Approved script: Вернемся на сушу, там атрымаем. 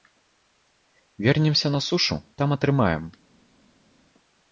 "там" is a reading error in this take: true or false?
false